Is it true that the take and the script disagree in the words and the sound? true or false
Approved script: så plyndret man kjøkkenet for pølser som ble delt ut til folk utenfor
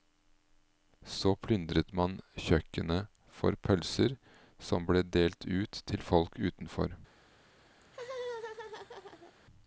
true